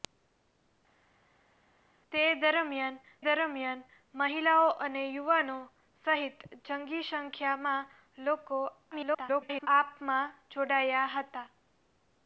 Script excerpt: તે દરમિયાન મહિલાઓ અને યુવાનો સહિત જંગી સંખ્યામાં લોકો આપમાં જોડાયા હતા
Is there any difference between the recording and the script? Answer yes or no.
yes